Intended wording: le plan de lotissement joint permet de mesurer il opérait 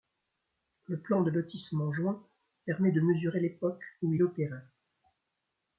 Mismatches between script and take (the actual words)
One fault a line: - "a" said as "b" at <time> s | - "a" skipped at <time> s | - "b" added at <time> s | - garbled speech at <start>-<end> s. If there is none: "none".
- "l'époque où" added at 3.4 s